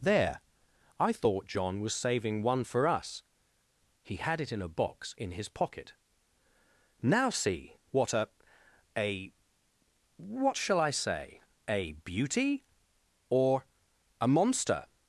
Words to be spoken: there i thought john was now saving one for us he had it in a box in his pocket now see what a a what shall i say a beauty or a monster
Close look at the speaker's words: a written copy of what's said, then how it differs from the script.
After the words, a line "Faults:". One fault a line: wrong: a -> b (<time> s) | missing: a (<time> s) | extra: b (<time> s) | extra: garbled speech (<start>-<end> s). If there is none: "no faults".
there i thought john was saving one for us he had it in a box in his pocket now see what a a what shall i say a beauty or a monster
Faults:
missing: now (1.9 s)